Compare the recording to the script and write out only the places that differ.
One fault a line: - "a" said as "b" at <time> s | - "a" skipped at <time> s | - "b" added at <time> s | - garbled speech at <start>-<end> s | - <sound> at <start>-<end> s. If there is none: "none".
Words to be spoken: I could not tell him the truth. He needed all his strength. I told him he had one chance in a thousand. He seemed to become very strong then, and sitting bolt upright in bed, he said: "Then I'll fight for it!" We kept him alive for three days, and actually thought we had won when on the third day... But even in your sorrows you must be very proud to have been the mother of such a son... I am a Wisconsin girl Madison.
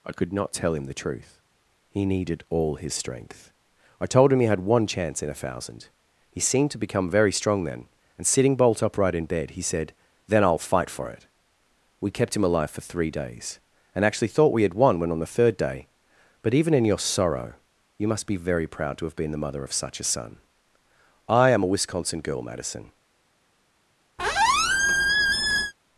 - "sorrows" said as "sorrow" at 17.0 s
- squeak at 24.2-25.7 s